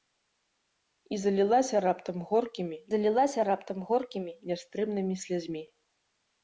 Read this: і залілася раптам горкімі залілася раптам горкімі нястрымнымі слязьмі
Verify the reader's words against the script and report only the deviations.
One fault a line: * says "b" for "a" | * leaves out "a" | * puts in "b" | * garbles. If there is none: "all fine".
all fine